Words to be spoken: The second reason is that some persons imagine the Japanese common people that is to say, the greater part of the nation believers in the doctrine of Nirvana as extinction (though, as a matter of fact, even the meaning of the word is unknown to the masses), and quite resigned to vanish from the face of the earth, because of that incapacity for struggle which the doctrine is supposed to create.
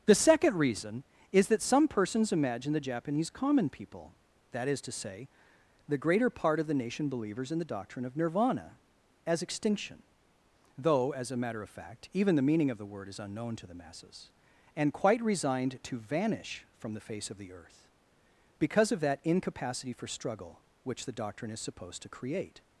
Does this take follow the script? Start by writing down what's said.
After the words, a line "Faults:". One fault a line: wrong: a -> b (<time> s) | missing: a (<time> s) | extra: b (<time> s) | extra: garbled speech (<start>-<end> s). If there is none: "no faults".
The second reason is that some persons imagine the Japanese common people that is to say, the greater part of the nation believers in the doctrine of Nirvana as extinction (though, as a matter of fact, even the meaning of the word is unknown to the masses), and quite resigned to vanish from the face of the earth, because of that incapacity for struggle which the doctrine is supposed to create.
Faults:
no faults